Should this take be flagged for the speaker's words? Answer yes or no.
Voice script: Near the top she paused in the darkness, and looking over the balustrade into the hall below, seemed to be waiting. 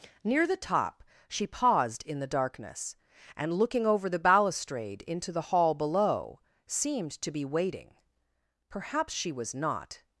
yes